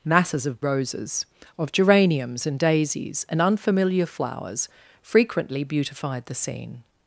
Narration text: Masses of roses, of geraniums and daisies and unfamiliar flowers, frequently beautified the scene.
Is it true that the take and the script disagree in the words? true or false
false